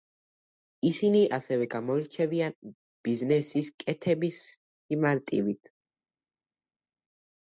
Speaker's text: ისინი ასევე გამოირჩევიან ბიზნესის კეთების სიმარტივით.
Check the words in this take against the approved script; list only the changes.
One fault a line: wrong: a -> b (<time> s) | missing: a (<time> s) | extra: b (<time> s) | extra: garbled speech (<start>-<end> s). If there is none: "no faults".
no faults